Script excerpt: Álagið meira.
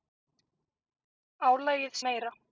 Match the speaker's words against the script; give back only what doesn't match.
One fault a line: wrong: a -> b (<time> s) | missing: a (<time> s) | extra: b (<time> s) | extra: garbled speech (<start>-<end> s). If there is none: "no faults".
no faults